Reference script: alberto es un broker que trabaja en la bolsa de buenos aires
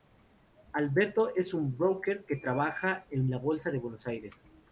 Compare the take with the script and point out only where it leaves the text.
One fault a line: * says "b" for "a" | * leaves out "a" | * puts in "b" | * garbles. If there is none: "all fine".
all fine